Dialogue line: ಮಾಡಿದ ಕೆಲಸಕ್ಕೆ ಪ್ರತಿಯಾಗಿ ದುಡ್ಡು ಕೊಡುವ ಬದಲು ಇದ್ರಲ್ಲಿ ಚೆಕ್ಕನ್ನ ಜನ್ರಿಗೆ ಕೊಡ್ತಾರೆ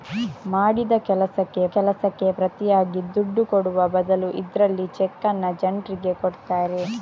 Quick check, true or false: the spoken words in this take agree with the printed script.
false